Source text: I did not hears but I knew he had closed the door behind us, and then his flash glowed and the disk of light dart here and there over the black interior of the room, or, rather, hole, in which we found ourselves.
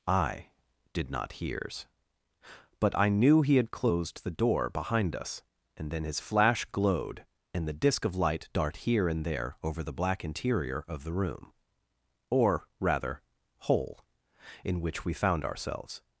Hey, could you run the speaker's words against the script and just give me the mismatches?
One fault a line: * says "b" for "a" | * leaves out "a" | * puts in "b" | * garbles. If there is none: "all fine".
all fine